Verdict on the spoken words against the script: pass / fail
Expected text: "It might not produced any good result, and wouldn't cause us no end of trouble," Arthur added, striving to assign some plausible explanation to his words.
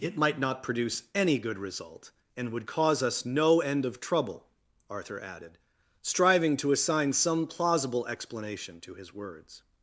fail